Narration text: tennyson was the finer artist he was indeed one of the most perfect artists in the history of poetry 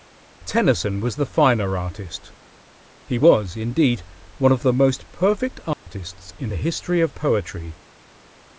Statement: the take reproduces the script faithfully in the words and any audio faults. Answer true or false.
false